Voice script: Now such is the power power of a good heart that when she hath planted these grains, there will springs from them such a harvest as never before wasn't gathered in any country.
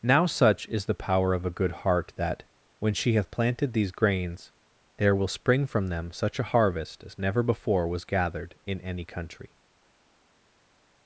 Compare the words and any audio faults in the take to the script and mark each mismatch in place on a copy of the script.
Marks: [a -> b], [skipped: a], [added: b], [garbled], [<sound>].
Now such is the power [skipped: power] of a good heart that when she hath planted these grains, there will [springs -> spring] from them such a harvest as never before [wasn't -> was] gathered in any country.